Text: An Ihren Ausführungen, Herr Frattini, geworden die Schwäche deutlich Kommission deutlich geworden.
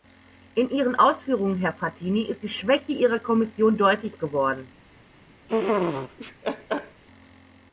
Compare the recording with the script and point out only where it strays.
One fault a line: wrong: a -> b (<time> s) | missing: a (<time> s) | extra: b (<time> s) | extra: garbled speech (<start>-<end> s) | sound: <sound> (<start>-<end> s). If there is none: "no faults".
wrong: An -> In (0.6 s)
wrong: geworden -> ist (2.2 s)
wrong: deutlich -> ihrer (2.9 s)
sound: laugh (5.5-7.0 s)